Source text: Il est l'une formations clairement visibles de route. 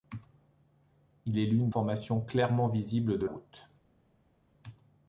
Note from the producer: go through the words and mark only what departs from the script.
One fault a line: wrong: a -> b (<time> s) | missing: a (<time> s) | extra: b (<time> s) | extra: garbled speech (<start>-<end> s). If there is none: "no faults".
no faults